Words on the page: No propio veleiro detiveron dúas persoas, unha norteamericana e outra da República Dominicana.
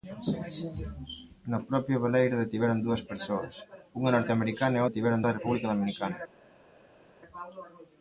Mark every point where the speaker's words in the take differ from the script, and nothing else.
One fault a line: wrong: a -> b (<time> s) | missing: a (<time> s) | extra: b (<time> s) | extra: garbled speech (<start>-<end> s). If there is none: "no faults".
wrong: outra -> detiveron (4.9 s)